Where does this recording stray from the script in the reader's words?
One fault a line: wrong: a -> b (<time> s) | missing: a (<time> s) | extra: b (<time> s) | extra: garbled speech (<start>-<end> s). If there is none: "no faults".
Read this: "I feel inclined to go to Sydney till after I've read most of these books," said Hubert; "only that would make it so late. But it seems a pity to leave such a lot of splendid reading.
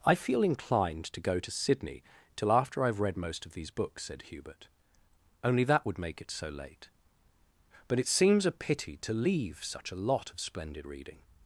no faults